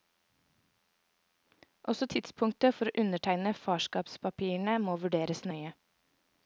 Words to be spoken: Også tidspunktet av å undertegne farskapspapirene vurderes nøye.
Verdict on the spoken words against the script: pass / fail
fail